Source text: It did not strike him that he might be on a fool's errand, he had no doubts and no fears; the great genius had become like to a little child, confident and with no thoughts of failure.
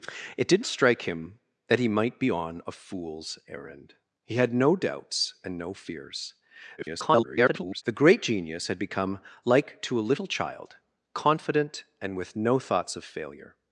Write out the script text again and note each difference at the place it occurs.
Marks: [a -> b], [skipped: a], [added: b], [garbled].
It did [skipped: not] strike him that he might be on a fool's errand, he had no doubts and no fears; [garbled] the great genius had become like to a little child, confident and with no thoughts of failure.